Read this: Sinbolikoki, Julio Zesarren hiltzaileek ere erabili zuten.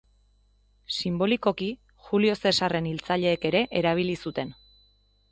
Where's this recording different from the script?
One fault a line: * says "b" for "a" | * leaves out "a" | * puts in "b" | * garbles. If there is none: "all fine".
all fine